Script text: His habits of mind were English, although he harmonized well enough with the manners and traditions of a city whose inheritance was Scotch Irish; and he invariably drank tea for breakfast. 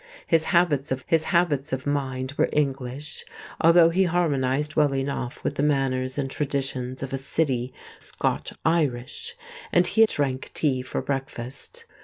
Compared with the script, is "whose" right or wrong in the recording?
wrong